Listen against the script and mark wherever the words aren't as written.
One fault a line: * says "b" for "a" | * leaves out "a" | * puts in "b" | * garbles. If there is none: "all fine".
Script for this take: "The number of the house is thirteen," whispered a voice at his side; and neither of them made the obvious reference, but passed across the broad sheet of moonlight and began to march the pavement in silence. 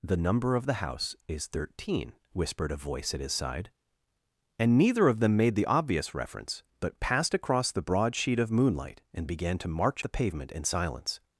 all fine